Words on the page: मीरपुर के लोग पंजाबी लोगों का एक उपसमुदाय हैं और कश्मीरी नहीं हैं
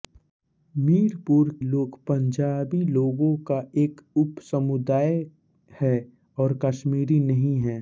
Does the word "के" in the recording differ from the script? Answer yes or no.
yes